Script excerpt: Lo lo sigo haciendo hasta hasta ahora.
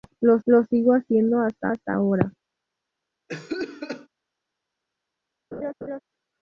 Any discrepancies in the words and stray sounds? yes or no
yes